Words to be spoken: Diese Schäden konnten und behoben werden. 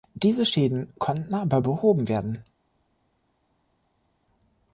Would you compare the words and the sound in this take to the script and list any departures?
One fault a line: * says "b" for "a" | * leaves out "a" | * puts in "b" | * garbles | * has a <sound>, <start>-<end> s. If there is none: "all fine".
* says "aber" for "und"